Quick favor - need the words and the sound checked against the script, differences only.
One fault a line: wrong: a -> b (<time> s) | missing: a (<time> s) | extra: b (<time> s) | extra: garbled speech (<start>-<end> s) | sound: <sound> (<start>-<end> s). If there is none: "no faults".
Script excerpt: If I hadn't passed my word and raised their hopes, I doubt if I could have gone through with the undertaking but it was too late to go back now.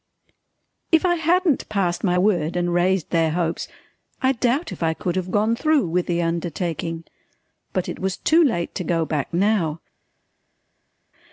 no faults